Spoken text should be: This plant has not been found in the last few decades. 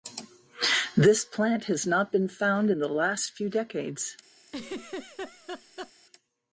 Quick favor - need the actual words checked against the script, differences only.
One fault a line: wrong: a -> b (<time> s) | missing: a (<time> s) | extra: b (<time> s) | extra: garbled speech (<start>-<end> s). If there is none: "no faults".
no faults